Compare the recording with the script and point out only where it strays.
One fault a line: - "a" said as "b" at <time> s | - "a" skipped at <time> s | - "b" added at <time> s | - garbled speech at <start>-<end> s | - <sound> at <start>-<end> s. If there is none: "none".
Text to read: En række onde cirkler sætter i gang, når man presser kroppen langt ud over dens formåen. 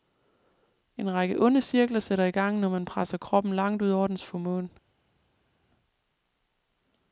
none